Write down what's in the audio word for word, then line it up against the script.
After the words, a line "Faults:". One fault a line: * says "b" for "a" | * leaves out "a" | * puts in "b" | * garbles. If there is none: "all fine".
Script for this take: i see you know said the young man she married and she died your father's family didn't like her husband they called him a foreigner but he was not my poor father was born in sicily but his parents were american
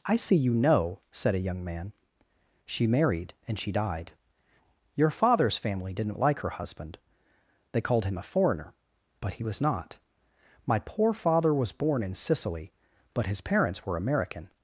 i see you know said a young man she married and she died your father's family didn't like her husband they called him a foreigner but he was not my poor father was born in sicily but his parents were american
Faults:
* says "a" for "the"